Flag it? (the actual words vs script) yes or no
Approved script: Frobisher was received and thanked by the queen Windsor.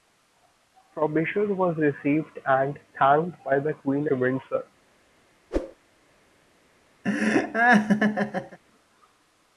no